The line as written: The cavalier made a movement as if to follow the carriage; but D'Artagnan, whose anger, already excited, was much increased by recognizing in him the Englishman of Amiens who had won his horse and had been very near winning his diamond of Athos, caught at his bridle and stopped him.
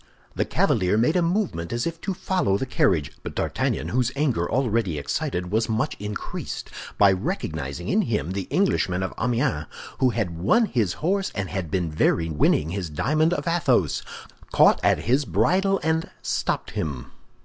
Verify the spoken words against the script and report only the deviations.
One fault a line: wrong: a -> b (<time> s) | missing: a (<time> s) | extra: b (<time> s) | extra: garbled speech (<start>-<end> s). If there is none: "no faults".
missing: near (12.3 s)